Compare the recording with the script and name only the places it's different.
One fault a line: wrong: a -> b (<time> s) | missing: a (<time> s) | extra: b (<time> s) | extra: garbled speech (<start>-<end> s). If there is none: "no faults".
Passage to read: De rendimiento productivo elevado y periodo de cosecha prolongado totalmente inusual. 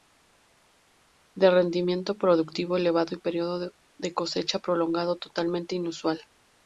no faults